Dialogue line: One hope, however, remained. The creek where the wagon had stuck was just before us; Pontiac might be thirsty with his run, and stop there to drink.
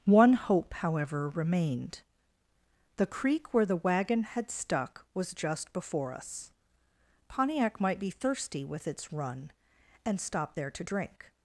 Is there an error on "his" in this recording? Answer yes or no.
yes